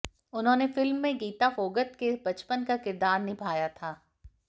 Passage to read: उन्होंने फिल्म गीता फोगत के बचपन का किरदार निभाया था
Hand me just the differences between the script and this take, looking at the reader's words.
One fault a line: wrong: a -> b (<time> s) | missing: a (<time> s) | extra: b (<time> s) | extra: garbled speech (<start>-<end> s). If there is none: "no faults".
extra: में (1.0 s)